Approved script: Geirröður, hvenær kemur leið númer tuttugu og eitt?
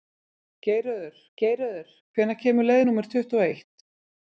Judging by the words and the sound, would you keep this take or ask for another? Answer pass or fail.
fail